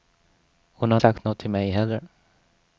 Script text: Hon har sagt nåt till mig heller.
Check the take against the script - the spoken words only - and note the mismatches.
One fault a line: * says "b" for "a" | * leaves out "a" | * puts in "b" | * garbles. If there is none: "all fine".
all fine